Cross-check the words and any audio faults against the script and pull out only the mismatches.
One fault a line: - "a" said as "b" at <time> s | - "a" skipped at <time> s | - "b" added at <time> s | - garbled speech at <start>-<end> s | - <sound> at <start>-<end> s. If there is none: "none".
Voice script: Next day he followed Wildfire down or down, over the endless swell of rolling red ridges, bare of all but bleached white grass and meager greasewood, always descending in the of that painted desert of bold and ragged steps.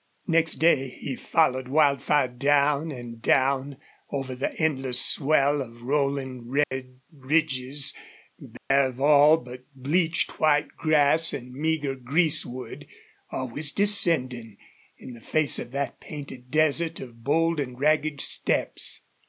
- "or" said as "and" at 2.9 s
- dropout at 6.6-6.7 s
- dropout at 8.6-8.7 s
- "face" added at 15.2 s